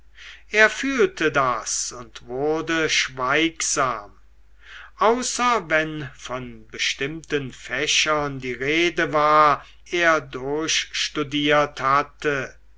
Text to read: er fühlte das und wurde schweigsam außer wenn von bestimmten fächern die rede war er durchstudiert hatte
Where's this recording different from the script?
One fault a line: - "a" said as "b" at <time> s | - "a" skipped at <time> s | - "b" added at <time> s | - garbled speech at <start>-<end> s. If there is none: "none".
none